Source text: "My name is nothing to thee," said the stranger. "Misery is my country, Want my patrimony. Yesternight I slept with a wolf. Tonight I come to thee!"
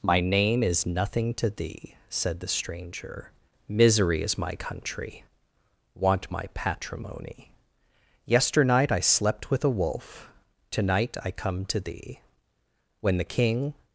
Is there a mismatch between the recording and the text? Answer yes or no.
yes